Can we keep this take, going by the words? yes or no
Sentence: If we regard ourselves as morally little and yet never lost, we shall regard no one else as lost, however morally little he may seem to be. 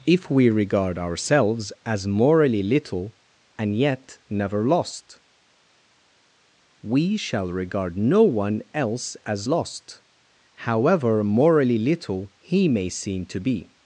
yes